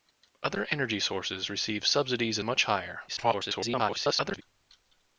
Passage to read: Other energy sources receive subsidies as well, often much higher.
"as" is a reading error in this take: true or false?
true